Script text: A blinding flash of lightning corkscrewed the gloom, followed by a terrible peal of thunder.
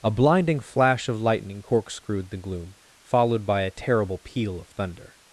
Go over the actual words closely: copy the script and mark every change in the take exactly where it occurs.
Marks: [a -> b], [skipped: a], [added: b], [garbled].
A blinding flash of lightning corkscrewed the gloom, followed by a terrible peal of thunder.